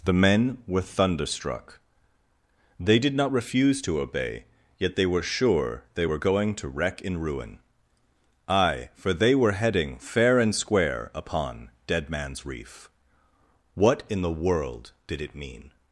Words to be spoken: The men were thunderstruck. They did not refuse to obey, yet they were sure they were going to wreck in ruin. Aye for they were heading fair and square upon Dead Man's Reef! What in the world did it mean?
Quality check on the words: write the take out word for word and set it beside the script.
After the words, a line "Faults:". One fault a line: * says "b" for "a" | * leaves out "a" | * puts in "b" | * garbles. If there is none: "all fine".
The men were thunderstruck. They did not refuse to obey, yet they were sure they were going to wreck in ruin. Aye for they were heading fair and square upon Dead Man's Reef! What in the world did it mean?
Faults:
all fine